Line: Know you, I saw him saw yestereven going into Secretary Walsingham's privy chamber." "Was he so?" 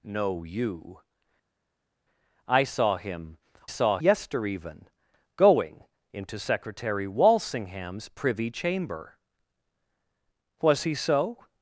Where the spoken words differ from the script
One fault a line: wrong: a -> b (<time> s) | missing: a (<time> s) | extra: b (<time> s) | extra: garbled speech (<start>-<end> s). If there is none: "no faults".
no faults